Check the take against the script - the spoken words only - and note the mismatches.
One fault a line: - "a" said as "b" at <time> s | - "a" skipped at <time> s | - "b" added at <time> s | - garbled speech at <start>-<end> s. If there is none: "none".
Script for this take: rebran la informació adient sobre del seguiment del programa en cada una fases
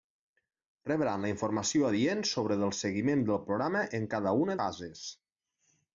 none